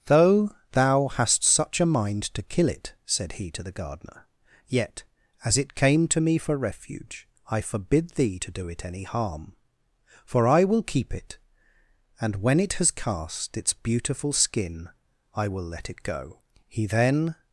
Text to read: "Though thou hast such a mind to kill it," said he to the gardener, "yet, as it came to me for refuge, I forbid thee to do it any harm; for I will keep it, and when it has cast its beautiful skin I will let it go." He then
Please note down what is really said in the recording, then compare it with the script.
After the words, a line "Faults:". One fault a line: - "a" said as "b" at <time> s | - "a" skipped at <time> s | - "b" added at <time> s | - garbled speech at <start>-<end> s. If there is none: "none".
"Though thou hast such a mind to kill it," said he to the gardener, "yet, as it came to me for refuge, I forbid thee to do it any harm; for I will keep it, and when it has cast its beautiful skin I will let it go." He then
Faults:
none